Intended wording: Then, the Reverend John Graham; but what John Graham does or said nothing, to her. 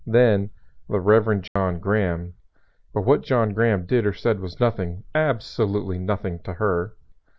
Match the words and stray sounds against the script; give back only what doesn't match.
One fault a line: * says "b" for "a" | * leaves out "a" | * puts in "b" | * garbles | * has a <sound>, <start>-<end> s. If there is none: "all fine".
* has a dropout, 1.5-1.6 s
* says "did" for "does"
* puts in "was nothing absolutely"